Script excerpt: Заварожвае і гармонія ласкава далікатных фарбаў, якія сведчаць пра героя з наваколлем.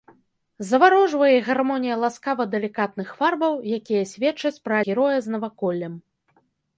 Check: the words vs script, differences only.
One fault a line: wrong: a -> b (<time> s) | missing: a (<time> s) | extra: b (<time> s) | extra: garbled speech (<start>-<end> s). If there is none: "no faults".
no faults